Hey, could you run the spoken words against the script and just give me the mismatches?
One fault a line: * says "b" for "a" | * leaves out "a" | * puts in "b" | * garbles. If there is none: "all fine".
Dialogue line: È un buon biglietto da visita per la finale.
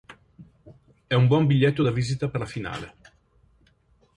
all fine